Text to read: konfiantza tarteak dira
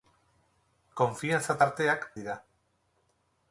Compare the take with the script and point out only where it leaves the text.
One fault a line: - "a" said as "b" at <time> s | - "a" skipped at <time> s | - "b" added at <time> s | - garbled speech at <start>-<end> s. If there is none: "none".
none